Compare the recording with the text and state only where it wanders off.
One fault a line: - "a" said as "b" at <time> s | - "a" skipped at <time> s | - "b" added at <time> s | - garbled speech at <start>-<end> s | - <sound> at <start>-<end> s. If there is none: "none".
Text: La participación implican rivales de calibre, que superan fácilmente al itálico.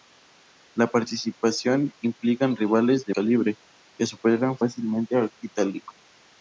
none